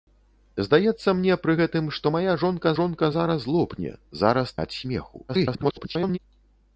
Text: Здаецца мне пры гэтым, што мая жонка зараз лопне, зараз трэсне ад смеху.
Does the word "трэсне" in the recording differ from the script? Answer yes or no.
yes